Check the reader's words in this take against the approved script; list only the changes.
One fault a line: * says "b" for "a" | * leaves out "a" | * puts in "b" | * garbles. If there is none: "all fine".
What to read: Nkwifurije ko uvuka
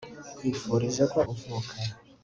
all fine